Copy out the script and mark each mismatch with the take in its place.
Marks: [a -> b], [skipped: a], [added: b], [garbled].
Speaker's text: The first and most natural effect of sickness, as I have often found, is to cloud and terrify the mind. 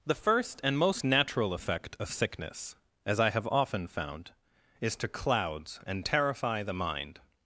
The first and most natural effect of sickness, as I have often found, is to [cloud -> clouds] and terrify the mind.